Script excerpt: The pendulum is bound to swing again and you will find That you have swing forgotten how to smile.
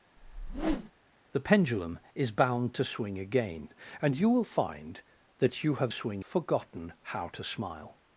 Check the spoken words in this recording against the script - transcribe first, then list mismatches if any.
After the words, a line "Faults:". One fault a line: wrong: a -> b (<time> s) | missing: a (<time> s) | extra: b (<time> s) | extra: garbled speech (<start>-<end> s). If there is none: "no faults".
The pendulum is bound to swing again and you will find That you have swing forgotten how to smile.
Faults:
no faults